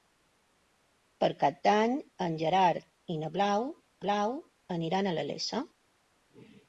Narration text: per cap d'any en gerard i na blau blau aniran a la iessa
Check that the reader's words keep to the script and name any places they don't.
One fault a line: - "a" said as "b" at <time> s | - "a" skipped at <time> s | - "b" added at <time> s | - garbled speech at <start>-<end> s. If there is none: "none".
none